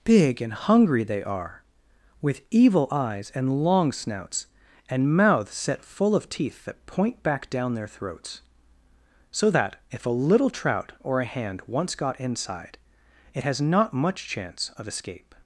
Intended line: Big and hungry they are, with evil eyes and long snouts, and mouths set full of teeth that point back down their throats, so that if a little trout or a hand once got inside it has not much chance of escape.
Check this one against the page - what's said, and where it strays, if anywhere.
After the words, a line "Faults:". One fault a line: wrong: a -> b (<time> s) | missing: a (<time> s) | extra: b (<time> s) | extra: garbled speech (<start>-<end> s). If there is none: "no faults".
Big and hungry they are, with evil eyes and long snouts, and mouths set full of teeth that point back down their throats, so that if a little trout or a hand once got inside it has not much chance of escape.
Faults:
no faults